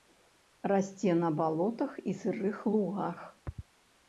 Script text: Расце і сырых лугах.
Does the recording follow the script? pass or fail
fail